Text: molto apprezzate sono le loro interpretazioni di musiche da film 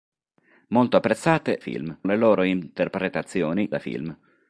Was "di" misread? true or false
true